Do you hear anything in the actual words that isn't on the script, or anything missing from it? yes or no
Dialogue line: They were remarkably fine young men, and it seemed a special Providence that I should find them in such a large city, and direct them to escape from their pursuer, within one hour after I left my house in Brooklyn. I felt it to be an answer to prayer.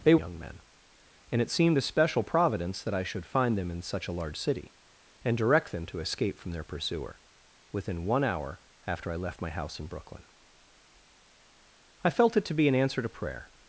yes